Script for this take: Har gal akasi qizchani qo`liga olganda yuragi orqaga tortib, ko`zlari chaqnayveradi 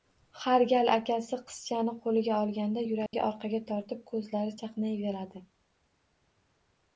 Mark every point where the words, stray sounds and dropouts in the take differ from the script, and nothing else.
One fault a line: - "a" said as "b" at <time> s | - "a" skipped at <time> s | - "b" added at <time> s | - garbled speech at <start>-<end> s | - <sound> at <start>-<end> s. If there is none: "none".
- dropout at 3.1-3.1 s